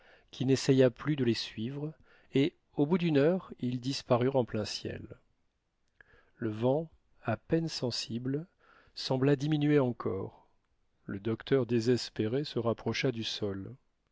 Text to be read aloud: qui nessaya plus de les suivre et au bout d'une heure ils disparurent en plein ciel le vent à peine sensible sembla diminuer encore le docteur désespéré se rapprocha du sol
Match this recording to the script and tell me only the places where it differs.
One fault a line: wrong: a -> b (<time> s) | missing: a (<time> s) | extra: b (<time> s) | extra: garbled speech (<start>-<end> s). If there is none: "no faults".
no faults